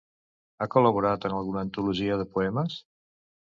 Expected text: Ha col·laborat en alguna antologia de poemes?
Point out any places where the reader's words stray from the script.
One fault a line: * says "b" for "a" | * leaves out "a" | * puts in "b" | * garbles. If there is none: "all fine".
all fine